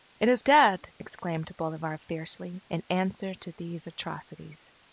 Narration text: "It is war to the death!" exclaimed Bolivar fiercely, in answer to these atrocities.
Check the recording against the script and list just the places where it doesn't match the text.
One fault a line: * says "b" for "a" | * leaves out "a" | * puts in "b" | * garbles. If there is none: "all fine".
* leaves out "war to the"